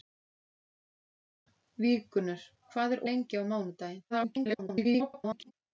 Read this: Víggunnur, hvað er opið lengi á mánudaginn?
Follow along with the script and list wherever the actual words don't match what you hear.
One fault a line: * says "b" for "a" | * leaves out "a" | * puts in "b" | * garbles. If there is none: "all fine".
* leaves out "opið"
* garbles